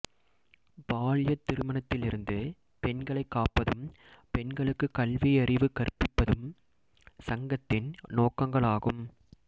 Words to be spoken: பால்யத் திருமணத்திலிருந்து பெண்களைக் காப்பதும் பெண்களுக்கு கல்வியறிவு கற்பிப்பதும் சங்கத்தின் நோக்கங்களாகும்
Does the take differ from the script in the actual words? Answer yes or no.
no